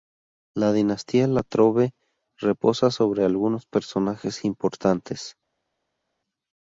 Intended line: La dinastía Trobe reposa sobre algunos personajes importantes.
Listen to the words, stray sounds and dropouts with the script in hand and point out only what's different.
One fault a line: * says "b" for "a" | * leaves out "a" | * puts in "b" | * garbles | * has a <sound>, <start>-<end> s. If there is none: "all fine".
* puts in "La"